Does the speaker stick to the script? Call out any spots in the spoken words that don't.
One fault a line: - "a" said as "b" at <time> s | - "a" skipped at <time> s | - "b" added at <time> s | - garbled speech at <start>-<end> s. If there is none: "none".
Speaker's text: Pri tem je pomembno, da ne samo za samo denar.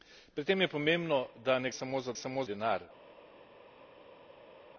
none